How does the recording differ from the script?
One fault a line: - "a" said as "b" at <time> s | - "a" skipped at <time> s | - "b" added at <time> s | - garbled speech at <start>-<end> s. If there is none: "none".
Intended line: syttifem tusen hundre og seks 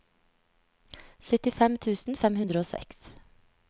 - "fem" added at 2.2 s